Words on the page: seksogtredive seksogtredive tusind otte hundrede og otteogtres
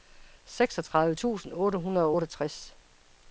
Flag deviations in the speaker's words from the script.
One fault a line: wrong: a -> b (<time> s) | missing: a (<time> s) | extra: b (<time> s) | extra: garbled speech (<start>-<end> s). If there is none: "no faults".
missing: seksogtredive (1.1 s)